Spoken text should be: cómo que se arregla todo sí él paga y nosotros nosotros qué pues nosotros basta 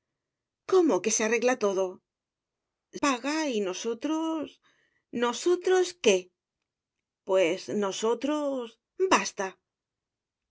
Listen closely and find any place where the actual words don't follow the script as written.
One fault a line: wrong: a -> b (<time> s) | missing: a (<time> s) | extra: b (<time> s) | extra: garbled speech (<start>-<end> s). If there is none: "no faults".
missing: sí él (1.9 s)